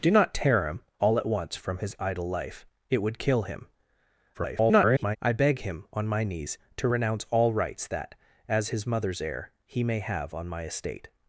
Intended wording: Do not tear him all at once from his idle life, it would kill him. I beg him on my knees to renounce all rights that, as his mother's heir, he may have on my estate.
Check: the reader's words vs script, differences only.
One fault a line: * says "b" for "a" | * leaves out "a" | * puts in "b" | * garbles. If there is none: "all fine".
* garbles